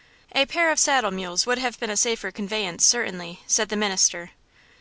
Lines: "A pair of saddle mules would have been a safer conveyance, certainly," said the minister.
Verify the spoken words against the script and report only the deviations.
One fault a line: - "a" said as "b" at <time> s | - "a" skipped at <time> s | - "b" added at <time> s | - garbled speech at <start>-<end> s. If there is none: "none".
none